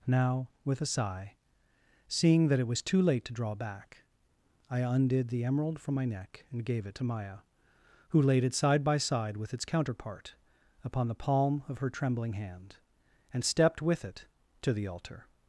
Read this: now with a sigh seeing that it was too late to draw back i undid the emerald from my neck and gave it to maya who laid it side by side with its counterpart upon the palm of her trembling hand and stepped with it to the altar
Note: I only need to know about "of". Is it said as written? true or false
true